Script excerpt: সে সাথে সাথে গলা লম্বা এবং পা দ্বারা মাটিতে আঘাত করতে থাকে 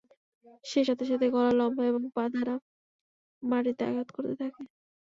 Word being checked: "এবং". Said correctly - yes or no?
yes